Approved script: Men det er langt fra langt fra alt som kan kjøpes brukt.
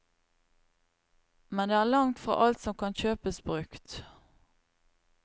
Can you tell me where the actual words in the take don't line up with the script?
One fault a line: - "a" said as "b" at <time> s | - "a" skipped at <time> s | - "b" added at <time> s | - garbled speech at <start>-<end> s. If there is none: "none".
- "langt fra" skipped at 2.4 s